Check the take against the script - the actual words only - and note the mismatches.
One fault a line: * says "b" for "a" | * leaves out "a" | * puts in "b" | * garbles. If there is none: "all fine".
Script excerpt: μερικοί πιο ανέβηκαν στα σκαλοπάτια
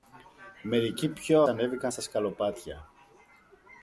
all fine